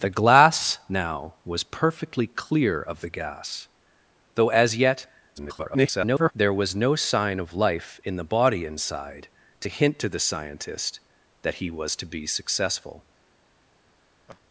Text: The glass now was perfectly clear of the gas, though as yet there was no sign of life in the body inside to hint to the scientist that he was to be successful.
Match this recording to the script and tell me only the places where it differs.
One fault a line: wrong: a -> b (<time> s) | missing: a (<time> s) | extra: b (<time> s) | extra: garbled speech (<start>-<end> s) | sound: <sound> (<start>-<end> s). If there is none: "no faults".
extra: garbled speech (5.4-6.3 s)
sound: laugh (14.3-14.4 s)